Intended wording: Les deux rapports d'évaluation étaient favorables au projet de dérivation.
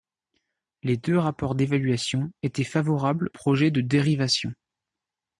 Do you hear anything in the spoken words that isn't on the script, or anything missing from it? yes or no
yes